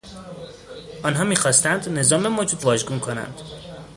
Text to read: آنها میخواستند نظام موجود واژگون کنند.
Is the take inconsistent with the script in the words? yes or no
no